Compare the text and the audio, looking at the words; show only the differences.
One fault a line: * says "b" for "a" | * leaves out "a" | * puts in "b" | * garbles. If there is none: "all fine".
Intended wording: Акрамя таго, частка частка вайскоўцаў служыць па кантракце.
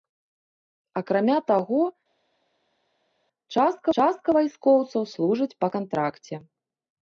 all fine